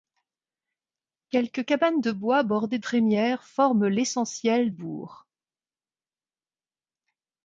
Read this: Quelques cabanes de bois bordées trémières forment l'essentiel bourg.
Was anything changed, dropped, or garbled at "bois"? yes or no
no